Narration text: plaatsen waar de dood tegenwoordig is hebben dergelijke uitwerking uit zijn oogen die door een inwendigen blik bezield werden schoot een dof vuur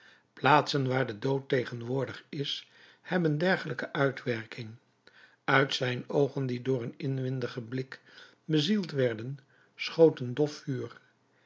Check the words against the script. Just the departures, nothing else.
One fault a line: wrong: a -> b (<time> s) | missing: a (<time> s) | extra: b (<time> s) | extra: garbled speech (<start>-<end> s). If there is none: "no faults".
no faults